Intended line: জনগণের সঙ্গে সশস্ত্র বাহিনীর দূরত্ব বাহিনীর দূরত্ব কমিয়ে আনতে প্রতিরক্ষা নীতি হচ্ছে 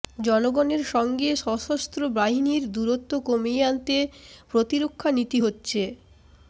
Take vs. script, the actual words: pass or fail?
fail